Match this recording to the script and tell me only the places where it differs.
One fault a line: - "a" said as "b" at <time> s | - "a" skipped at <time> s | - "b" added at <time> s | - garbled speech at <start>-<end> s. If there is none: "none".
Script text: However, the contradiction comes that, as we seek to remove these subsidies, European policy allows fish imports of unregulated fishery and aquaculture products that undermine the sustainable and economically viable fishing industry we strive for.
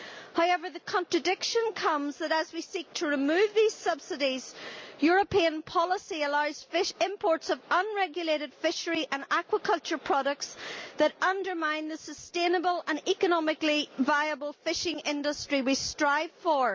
none